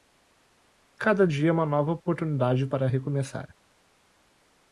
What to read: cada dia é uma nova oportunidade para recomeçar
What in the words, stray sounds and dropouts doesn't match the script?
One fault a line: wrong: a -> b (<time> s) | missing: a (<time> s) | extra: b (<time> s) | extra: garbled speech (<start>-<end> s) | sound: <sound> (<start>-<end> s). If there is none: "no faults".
no faults